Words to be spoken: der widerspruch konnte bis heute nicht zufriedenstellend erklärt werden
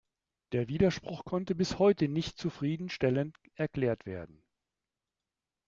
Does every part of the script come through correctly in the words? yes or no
yes